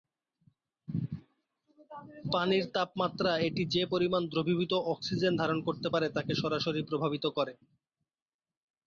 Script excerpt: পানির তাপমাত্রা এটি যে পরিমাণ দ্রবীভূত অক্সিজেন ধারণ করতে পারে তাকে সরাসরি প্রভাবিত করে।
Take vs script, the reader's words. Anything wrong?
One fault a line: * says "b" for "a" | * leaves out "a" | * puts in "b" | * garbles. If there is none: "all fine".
all fine